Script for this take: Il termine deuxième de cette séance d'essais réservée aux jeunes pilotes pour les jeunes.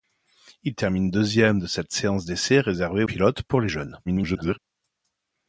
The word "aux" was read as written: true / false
false